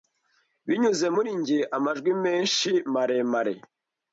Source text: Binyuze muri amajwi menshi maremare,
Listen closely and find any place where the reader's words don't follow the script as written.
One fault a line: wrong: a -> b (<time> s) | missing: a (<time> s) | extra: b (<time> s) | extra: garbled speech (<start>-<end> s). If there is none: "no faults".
extra: njye (1.4 s)